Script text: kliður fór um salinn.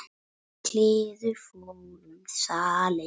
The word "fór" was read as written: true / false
true